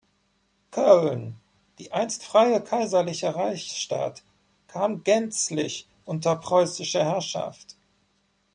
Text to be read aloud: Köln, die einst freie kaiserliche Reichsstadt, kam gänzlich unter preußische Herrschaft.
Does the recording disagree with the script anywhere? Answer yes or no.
no